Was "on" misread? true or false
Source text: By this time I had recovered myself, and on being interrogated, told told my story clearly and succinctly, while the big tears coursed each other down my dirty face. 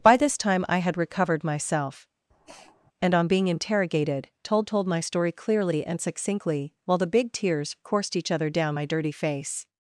false